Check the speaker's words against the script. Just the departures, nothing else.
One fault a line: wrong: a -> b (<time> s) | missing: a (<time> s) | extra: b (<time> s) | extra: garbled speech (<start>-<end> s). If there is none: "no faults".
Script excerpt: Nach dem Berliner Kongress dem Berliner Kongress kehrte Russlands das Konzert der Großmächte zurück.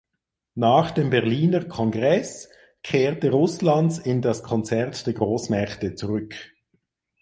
missing: dem Berliner Kongress (2.5 s)
extra: in (4.0 s)